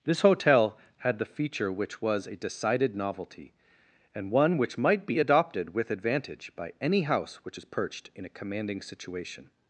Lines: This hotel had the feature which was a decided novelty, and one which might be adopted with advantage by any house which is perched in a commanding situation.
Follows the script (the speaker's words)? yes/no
yes